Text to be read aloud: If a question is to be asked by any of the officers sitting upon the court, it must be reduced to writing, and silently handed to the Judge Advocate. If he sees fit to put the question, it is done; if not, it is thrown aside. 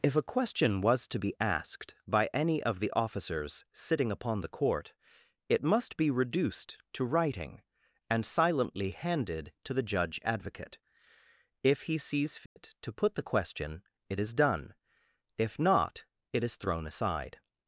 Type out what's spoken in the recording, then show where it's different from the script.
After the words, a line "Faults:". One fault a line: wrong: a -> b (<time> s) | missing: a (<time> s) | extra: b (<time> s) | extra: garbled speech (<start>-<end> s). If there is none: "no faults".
If a question was to be asked by any of the officers sitting upon the court, it must be reduced to writing, and silently handed to the Judge Advocate. If he sees fit to put the question, it is done; if not, it is thrown aside.
Faults:
wrong: is -> was (0.8 s)